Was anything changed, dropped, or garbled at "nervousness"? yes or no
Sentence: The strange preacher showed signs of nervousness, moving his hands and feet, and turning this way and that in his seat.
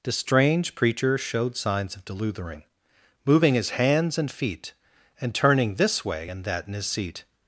yes